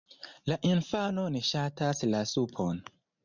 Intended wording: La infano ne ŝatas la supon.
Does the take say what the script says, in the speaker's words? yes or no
yes